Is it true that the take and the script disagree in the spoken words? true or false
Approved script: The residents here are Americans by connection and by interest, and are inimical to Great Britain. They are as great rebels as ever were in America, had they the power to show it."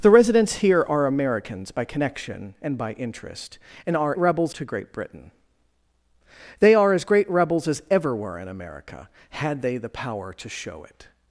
true